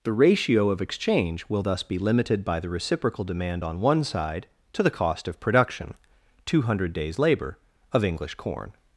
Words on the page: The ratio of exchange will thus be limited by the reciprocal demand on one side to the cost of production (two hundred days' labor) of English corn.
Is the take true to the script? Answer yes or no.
yes